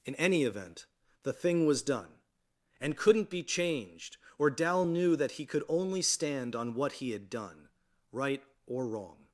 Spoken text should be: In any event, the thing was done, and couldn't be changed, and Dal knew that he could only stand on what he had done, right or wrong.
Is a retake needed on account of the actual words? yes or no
yes